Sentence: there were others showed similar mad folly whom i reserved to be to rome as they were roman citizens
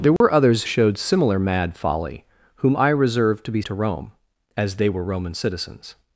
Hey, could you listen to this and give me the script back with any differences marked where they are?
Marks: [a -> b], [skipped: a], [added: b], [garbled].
there were others showed similar mad folly whom i reserved to be to rome as they were roman citizens